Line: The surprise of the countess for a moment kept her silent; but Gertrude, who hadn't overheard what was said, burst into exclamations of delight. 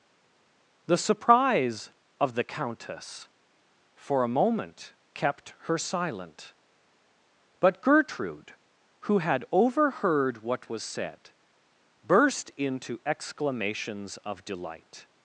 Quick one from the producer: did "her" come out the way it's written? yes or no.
yes